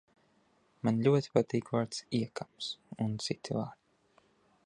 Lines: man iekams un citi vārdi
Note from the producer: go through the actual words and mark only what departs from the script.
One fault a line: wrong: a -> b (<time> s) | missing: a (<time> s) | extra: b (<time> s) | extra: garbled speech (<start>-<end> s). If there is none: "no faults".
extra: ļoti patīk vārds (1.1 s)